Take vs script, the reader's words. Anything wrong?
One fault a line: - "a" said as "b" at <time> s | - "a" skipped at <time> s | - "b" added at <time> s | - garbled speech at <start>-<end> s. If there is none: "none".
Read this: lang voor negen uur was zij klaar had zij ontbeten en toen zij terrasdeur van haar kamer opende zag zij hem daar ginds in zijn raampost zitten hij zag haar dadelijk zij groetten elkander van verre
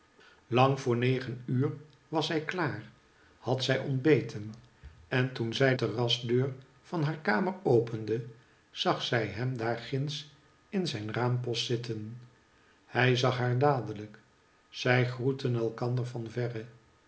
none